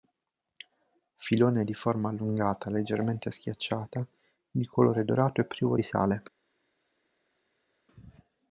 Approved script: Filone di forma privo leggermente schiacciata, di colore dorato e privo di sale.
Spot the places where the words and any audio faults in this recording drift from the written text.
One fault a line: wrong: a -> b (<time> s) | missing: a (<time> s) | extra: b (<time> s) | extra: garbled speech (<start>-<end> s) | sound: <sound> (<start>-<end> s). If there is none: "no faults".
wrong: privo -> allungata (2.1 s)